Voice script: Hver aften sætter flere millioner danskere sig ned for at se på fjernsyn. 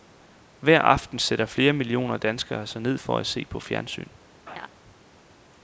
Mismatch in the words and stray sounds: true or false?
true